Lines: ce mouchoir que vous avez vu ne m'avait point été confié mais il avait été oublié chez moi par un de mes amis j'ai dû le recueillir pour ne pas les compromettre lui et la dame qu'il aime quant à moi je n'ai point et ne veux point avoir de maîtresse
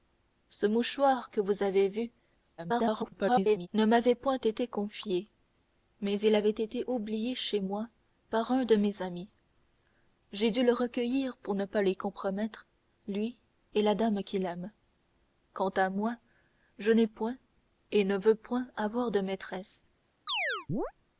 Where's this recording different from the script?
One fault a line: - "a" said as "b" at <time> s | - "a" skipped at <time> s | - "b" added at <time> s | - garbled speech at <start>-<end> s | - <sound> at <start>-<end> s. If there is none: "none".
- garbled speech at 2.6-3.7 s
- chirp at 20.3-20.9 s